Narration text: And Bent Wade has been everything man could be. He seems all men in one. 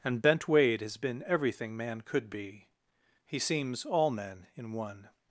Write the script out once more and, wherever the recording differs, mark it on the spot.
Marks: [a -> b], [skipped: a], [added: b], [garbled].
And Bent Wade has been everything man could be. He seems all men in one.